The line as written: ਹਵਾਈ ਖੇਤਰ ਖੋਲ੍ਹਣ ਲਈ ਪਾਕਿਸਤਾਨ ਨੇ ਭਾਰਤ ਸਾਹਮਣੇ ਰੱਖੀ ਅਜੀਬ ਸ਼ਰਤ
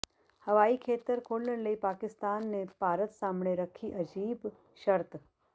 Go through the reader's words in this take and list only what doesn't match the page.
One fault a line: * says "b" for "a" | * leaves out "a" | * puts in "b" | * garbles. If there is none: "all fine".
all fine